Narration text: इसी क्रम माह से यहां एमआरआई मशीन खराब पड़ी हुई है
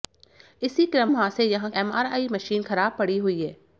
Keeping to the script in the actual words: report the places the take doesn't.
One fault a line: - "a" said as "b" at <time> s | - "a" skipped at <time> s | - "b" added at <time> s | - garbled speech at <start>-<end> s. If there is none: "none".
none